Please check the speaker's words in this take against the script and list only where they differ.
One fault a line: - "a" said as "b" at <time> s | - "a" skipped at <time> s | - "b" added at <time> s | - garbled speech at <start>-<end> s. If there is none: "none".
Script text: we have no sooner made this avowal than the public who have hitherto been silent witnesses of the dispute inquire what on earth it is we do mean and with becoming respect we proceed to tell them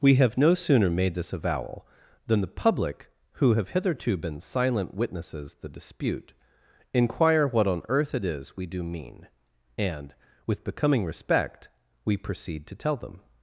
- "of" skipped at 5.6 s